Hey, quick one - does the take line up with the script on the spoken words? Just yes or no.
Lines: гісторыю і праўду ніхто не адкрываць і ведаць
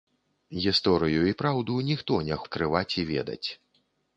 yes